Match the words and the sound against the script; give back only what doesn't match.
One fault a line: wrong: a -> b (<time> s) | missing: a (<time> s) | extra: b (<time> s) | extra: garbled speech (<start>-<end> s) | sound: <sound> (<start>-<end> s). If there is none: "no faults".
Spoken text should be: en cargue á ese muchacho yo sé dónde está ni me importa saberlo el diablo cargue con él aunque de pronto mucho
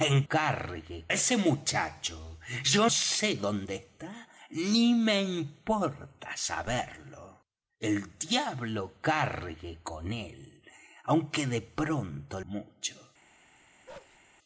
sound: bark (13.9-14.2 s)